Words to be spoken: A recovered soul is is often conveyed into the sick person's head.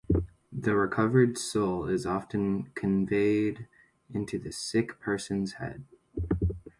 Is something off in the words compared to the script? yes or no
yes